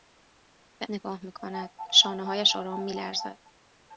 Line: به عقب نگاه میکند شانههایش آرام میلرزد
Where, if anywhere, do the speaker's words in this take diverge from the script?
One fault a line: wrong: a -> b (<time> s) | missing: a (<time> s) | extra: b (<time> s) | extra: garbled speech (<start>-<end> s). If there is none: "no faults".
missing: عقب (0.9 s)